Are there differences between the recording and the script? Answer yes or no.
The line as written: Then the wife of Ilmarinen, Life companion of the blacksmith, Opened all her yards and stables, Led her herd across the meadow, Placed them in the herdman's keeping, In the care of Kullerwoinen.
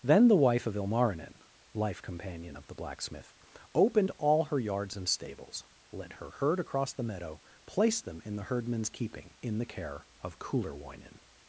no